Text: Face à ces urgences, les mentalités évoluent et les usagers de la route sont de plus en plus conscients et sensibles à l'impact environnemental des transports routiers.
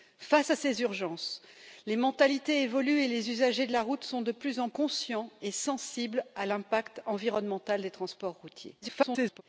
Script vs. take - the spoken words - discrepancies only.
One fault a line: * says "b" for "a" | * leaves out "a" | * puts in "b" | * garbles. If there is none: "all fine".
* leaves out "plus"
* garbles